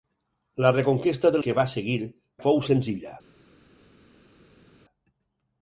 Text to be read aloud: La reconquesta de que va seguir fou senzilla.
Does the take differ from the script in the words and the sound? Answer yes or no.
no